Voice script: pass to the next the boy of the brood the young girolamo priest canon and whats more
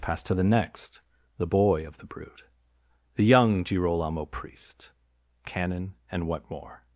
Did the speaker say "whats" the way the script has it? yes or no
no